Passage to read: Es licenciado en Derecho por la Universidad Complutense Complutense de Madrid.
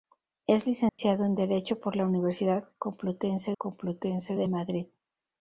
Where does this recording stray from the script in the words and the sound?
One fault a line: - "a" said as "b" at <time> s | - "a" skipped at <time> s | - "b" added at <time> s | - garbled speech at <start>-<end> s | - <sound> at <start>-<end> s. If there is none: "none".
- dropout at 0.9-1.0 s